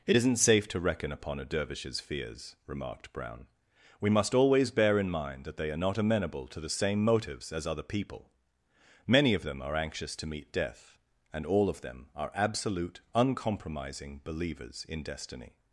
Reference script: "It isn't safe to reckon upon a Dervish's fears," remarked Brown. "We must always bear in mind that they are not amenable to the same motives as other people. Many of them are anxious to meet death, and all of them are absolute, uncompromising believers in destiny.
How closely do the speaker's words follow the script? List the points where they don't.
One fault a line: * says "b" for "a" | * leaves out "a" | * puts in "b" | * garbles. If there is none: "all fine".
all fine